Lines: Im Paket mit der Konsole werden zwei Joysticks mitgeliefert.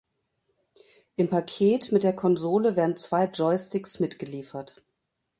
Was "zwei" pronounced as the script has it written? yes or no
yes